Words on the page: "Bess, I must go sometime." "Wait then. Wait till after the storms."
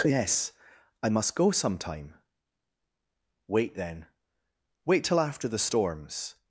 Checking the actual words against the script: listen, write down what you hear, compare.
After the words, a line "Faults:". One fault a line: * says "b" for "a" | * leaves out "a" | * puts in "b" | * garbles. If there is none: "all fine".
"Yes, I must go sometime." "Wait then. Wait till after the storms."
Faults:
* says "Yes" for "Bess"